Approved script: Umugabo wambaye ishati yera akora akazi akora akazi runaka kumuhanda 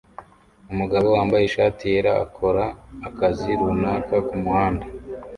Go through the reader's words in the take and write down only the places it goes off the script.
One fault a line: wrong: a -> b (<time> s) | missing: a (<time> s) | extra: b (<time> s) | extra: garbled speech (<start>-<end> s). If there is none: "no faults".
missing: akora akazi (3.5 s)